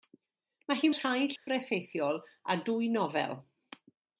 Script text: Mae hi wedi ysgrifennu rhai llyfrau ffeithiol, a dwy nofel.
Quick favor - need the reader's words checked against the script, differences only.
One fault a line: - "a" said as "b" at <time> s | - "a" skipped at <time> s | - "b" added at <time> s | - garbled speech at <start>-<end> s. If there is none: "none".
- "wedi ysgrifennu" skipped at 0.9 s